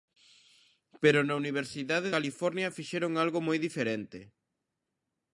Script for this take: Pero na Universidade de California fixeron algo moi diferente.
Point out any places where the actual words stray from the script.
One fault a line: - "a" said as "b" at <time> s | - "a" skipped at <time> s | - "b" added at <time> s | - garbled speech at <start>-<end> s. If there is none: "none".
- "de" skipped at 2.1 s